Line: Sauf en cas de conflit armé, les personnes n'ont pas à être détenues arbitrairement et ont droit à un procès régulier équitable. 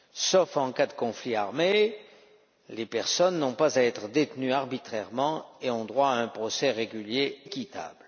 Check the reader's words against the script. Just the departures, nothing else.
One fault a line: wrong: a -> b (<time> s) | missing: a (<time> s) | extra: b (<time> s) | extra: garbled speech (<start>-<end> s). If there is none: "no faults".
no faults